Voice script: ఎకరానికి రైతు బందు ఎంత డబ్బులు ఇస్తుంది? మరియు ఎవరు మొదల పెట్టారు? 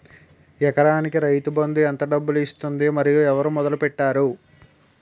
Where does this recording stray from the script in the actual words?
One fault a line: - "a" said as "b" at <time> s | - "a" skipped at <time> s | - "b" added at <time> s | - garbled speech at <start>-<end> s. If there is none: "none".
none